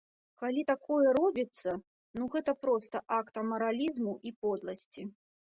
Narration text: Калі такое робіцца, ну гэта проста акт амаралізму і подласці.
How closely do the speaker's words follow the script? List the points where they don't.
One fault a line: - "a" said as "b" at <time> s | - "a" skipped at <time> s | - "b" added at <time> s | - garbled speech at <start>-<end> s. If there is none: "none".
none